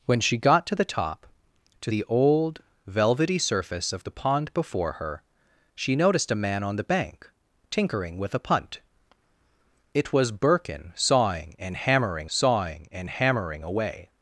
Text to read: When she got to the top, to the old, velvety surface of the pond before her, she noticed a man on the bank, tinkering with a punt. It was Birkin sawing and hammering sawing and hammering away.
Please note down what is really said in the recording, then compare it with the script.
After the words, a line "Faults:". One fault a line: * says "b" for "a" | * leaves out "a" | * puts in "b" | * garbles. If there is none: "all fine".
When she got to the top, to the old, velvety surface of the pond before her, she noticed a man on the bank, tinkering with a punt. It was Birkin sawing and hammering sawing and hammering away.
Faults:
all fine